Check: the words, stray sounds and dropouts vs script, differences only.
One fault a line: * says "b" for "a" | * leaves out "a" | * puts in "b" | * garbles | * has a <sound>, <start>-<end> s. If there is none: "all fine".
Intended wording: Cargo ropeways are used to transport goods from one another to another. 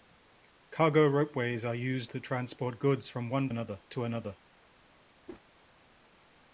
* has a whoosh, 5.3-5.4 s